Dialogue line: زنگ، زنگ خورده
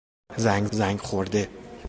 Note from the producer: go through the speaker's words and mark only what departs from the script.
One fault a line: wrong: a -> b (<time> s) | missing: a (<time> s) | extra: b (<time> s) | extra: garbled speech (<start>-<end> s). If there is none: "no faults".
no faults